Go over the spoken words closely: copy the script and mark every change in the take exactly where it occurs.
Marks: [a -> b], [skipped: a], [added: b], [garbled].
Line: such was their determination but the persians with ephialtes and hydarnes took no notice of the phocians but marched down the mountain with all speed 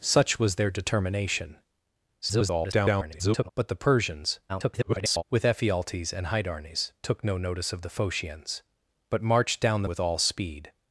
such was their determination [garbled] but the persians [garbled] with ephialtes and hydarnes took no notice of the phocians but marched down the [skipped: mountain] with all speed